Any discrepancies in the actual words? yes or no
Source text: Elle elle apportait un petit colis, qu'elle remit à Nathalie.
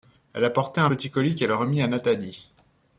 yes